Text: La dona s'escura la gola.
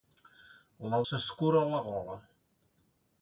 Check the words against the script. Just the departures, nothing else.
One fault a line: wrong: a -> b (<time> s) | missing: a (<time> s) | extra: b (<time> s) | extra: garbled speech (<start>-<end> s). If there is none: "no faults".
missing: dona (1.0 s)